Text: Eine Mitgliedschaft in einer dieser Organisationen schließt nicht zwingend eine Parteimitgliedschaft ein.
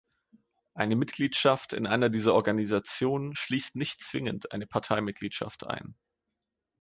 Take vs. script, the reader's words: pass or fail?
pass